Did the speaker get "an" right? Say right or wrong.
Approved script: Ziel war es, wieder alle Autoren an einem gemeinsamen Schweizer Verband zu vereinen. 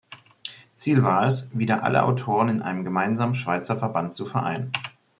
wrong